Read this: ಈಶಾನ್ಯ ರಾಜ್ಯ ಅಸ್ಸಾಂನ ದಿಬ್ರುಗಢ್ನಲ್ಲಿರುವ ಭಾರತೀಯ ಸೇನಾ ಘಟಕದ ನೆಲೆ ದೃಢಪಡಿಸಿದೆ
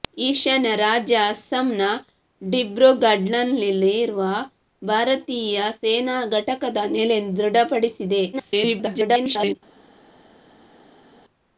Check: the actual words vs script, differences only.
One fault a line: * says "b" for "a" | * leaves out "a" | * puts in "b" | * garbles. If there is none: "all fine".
* garbles